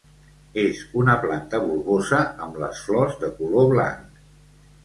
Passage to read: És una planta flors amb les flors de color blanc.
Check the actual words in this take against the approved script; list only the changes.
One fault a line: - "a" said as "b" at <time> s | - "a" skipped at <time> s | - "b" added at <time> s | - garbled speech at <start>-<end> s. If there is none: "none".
- "flors" said as "bulbosa" at 1.7 s